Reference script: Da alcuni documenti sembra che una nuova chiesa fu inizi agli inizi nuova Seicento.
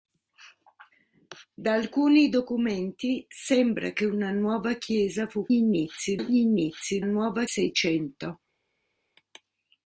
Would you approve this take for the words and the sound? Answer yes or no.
yes